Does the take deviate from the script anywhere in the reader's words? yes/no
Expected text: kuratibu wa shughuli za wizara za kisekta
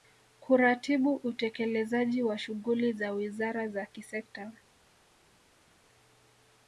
yes